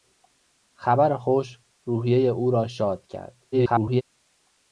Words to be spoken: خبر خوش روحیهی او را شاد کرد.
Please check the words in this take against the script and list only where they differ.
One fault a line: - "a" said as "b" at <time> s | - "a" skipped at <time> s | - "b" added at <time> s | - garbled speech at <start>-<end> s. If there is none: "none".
- garbled speech at 3.5-4.0 s